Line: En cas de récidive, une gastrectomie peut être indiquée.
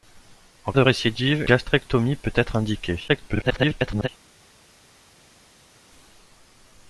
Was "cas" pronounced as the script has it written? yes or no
no